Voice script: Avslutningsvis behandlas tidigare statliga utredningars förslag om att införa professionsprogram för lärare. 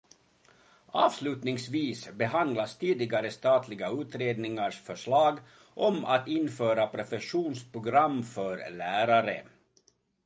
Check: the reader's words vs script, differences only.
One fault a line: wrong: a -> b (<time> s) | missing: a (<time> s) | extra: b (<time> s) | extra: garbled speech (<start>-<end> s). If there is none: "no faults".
no faults